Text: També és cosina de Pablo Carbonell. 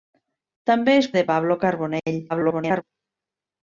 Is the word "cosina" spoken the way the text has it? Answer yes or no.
no